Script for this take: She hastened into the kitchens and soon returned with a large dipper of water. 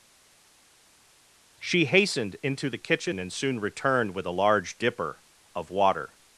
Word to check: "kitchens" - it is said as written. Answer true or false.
false